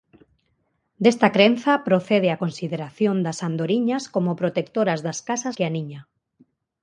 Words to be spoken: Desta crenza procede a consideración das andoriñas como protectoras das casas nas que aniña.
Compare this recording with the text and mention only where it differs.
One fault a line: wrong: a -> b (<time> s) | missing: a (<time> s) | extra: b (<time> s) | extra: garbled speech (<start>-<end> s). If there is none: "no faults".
missing: nas (5.5 s)